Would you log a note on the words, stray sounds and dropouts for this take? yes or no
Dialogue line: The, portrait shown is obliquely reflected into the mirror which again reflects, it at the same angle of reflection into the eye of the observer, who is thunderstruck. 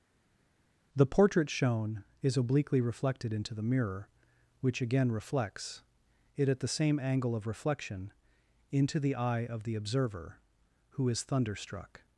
no